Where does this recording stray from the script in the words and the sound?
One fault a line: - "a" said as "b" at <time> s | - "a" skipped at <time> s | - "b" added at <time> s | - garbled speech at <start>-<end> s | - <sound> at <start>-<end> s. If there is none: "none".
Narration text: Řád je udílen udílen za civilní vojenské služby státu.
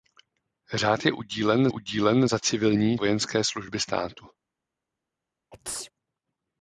- sneeze at 5.5-5.9 s